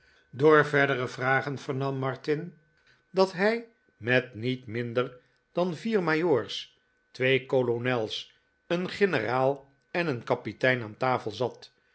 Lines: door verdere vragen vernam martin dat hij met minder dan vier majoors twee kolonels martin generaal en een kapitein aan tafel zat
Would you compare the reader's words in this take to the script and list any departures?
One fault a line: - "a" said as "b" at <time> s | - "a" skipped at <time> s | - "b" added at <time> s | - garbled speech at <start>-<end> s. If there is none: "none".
- "niet" added at 4.3 s
- "martin" said as "een" at 8.7 s